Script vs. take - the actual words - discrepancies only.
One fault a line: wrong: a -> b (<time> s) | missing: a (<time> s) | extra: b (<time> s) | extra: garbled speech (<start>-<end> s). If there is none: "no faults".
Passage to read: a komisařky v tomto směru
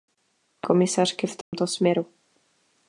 no faults